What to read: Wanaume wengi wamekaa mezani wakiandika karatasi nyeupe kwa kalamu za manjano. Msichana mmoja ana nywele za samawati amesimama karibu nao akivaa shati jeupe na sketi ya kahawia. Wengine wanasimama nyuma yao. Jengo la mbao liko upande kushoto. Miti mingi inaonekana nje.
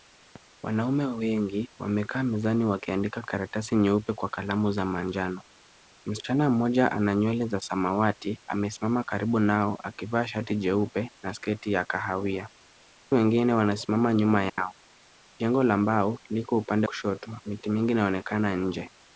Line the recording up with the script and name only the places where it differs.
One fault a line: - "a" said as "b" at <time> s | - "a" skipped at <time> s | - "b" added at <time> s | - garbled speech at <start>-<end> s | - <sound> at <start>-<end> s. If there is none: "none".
- dropout at 14.5-14.6 s